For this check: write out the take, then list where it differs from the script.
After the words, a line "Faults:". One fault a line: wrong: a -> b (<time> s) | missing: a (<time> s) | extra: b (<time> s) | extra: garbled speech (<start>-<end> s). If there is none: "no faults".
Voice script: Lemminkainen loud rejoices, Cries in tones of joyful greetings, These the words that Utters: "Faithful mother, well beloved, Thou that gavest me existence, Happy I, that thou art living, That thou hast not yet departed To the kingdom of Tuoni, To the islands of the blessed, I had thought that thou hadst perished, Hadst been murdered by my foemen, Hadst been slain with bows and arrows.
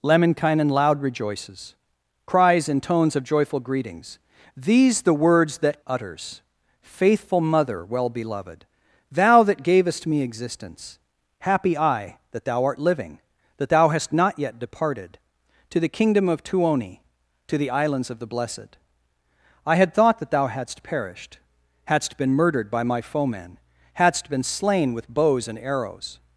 Lemminkainen loud rejoices, Cries in tones of joyful greetings, These the words that Utters: "Faithful mother, well beloved, Thou that gavest me existence, Happy I, that thou art living, That thou hast not yet departed To the kingdom of Tuoni, To the islands of the blessed, I had thought that thou hadst perished, Hadst been murdered by my foemen, Hadst been slain with bows and arrows.
Faults:
no faults